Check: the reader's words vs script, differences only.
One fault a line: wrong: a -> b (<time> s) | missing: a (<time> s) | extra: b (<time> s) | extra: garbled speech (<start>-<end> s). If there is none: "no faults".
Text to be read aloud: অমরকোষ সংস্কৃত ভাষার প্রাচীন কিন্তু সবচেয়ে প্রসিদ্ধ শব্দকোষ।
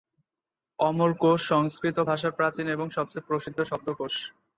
wrong: কিন্তু -> এবং (2.7 s)